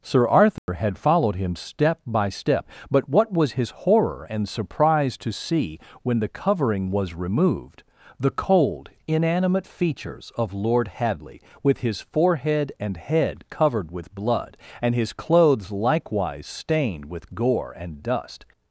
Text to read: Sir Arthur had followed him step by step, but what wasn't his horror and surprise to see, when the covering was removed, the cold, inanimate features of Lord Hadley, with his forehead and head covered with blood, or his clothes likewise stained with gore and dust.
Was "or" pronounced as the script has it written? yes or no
no